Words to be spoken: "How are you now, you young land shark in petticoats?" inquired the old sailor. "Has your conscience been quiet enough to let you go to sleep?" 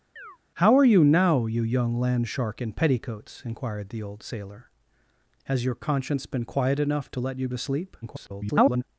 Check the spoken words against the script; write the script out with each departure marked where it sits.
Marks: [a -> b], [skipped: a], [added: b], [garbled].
"How are you now, you young land shark in petticoats?" inquired the old sailor. "Has your conscience been quiet enough to let you [skipped: go] to sleep?" [garbled]